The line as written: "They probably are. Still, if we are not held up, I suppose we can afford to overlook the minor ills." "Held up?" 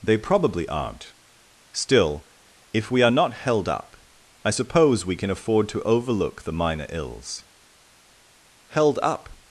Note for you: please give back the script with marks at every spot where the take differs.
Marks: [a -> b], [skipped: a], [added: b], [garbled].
"They probably [are. -> aren't] Still, if we are not held up, I suppose we can afford to overlook the minor ills." "Held up?"